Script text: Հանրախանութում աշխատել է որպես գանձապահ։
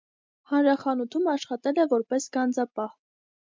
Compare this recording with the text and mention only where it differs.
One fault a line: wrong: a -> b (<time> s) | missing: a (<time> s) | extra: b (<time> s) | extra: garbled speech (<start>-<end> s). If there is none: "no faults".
no faults